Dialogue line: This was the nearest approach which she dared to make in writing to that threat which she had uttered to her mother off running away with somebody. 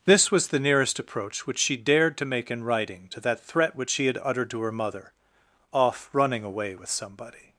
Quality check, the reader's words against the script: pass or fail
pass